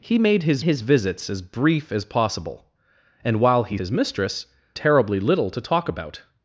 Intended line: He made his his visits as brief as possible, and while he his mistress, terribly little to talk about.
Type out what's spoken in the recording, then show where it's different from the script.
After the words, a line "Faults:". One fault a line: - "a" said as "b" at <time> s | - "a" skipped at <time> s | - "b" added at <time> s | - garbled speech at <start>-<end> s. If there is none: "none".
He made his his visits as brief as possible, and while he his mistress, terribly little to talk about.
Faults:
none